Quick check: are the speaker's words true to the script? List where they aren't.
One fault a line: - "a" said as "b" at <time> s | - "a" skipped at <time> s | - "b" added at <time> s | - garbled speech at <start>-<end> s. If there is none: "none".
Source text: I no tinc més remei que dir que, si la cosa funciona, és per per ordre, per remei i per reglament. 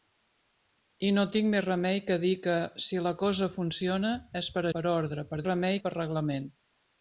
none